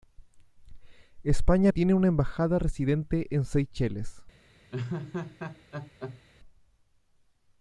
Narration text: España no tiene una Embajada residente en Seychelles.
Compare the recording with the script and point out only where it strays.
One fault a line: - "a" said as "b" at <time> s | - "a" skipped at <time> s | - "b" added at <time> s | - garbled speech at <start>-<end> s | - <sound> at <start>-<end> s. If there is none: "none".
- "no" skipped at 1.7 s
- laugh at 4.7-6.2 s